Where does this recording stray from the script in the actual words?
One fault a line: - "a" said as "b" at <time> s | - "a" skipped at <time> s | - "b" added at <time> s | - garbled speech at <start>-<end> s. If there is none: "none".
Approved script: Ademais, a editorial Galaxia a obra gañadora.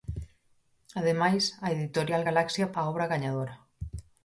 none